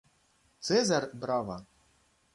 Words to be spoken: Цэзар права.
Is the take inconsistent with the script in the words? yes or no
no